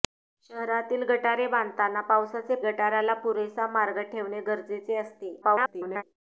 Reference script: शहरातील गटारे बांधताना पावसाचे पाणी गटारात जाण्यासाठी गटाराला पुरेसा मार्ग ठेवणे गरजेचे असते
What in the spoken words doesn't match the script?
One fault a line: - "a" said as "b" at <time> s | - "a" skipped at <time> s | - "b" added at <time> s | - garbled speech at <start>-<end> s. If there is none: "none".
- "पाणी गटारात जाण्यासाठी" skipped at 2.5 s
- garbled speech at 5.4-6.0 s